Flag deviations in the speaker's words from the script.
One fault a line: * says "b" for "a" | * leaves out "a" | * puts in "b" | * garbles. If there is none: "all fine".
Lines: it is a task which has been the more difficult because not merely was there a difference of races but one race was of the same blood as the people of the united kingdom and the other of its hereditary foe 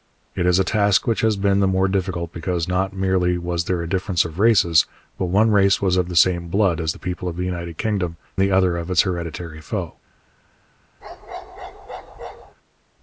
* leaves out "and"